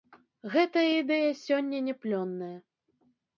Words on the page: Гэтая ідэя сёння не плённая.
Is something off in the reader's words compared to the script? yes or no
no